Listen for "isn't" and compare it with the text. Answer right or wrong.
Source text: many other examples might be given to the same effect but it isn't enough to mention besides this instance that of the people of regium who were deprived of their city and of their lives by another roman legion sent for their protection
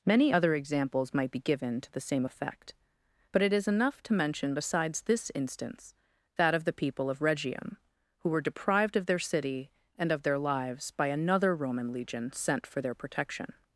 wrong